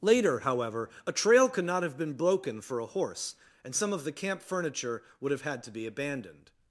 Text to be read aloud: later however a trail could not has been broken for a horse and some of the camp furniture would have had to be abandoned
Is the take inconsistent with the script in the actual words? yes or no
yes